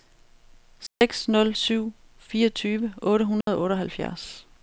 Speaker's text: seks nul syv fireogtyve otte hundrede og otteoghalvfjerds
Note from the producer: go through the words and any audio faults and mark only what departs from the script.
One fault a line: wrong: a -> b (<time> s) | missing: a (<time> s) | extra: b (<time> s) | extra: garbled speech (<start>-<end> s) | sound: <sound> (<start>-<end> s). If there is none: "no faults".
sound: dropout (0.9-1.0 s)
sound: dropout (3.4-3.5 s)